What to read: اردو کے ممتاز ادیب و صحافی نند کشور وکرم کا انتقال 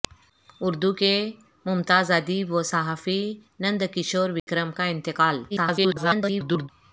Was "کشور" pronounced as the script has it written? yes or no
yes